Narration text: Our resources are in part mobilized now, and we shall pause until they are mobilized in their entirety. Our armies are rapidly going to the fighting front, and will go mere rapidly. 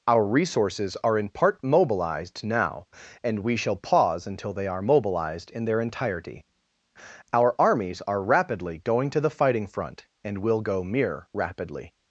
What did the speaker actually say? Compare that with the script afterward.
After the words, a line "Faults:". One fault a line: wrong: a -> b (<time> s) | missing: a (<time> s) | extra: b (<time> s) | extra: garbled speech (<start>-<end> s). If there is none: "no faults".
Our resources are in part mobilized now, and we shall pause until they are mobilized in their entirety. Our armies are rapidly going to the fighting front, and will go mere rapidly.
Faults:
no faults